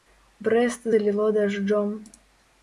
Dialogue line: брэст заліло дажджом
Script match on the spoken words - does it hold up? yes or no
yes